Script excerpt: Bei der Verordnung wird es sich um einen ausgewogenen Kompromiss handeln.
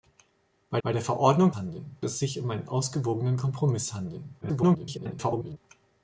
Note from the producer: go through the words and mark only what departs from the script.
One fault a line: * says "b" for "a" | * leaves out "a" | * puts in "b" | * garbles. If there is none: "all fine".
* puts in "bei"
* says "handeln" for "wird"
* garbles